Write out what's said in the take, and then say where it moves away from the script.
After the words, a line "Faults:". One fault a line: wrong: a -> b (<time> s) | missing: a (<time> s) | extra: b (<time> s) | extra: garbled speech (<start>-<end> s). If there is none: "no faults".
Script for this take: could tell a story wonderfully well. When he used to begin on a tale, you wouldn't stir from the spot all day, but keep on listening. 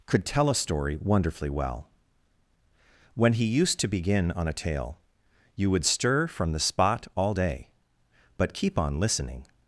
could tell a story wonderfully well. When he used to begin on a tale, you would stir from the spot all day, but keep on listening.
Faults:
wrong: wouldn't -> would (5.7 s)